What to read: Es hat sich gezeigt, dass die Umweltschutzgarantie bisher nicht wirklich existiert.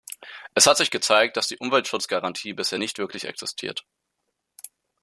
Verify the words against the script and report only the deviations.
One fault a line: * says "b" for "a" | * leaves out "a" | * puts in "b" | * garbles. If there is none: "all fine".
all fine